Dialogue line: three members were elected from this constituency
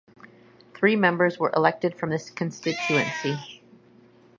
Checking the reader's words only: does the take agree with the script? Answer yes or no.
yes